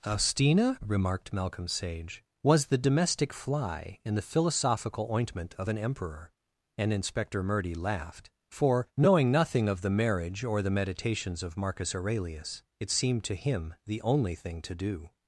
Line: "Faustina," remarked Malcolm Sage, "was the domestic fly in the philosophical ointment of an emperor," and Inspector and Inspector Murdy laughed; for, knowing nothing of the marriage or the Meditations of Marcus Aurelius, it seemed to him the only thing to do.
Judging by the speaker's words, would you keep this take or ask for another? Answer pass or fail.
fail